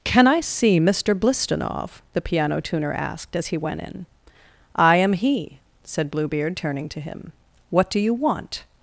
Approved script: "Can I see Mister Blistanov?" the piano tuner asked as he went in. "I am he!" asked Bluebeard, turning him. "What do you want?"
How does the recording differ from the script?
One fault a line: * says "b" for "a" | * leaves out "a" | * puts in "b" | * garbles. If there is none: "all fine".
* says "said" for "asked"
* puts in "to"